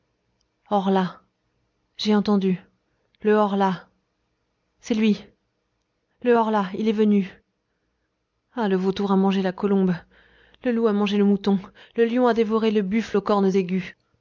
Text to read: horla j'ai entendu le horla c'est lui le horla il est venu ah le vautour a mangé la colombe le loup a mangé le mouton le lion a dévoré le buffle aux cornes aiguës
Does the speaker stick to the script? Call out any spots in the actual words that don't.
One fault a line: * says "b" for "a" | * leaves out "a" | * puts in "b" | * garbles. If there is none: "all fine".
all fine